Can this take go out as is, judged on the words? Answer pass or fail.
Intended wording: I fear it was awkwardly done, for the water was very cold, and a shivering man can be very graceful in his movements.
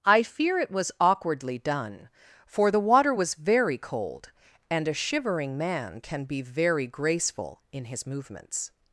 pass